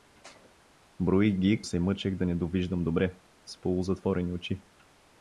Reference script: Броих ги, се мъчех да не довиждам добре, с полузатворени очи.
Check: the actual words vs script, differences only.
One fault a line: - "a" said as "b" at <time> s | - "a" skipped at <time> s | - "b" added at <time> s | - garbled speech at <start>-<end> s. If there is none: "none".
none